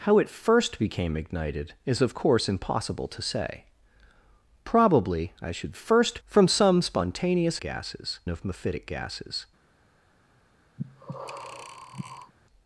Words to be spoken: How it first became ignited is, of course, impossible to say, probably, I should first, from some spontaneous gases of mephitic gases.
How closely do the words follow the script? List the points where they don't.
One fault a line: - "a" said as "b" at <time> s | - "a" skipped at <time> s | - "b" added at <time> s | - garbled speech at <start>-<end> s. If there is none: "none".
none